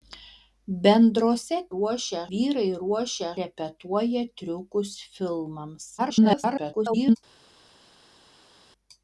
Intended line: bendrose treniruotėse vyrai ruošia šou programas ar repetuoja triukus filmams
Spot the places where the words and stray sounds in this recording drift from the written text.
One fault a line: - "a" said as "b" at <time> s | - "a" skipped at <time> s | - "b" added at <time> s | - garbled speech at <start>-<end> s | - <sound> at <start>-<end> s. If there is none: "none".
- "treniruotėse" said as "ruošia" at 1.7 s
- "šou programas ar" skipped at 3.3 s
- garbled speech at 6.0-7.2 s